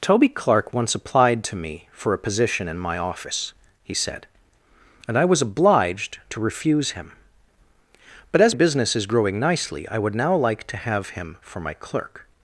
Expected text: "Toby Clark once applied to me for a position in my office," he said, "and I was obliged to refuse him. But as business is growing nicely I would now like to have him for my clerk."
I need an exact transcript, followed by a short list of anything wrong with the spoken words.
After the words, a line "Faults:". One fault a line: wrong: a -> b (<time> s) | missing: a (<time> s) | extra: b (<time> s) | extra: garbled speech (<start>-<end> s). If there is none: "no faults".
"Toby Clark once applied to me for a position in my office," he said, "and I was obliged to refuse him. But as business is growing nicely I would now like to have him for my clerk."
Faults:
no faults